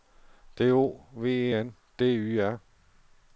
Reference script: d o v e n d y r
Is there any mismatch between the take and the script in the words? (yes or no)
no